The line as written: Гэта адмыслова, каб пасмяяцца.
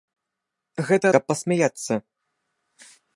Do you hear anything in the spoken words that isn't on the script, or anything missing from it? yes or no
yes